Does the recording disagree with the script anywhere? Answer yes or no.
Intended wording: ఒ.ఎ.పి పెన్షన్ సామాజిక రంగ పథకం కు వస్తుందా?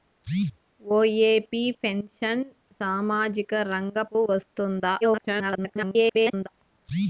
yes